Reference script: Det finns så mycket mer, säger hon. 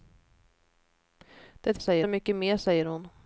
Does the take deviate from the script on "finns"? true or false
true